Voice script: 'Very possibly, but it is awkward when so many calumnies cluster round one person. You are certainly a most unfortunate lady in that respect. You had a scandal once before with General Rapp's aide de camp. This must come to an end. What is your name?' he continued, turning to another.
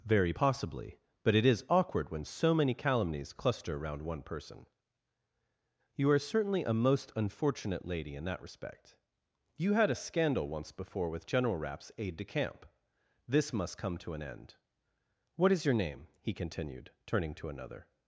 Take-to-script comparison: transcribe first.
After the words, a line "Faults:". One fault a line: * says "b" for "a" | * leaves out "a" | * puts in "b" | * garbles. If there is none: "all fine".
'Very possibly, but it is awkward when so many calumnies cluster around one person. You are certainly a most unfortunate lady in that respect. You had a scandal once before with General Rapp's aide de camp. This must come to an end. What is your name?' he continued, turning to another.
Faults:
* says "around" for "round"